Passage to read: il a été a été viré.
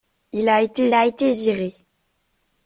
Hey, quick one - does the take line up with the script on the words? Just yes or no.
yes